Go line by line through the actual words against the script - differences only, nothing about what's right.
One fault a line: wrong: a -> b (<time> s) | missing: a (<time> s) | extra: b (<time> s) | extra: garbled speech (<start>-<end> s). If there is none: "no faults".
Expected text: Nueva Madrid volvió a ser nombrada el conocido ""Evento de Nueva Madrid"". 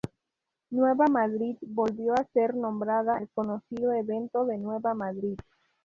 no faults